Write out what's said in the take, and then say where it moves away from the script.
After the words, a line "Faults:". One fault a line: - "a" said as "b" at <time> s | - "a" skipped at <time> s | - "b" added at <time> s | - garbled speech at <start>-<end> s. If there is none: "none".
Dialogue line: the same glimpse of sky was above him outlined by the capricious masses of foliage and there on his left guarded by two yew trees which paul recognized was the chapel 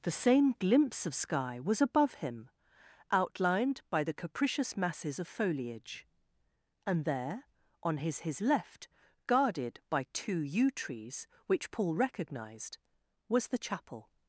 the same glimpse of sky was above him outlined by the capricious masses of foliage and there on his his left guarded by two yew trees which paul recognized was the chapel
Faults:
- "his" added at 8.2 s